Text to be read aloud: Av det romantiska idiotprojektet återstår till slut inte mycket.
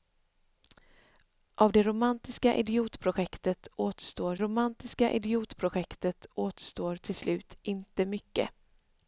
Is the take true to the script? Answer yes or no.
no